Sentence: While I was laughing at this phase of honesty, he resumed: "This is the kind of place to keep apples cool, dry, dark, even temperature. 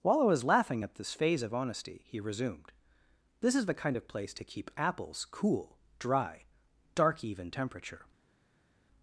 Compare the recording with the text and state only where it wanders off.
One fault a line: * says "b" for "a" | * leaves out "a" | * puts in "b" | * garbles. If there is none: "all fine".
all fine